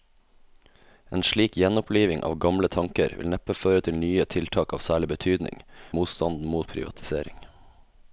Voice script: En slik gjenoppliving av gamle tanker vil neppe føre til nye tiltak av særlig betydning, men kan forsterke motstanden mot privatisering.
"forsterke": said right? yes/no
no